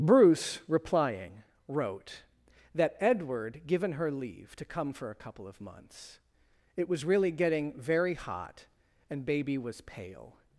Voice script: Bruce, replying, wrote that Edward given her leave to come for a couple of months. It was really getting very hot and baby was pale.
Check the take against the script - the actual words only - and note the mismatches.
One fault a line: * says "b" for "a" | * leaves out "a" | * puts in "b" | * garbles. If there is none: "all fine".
all fine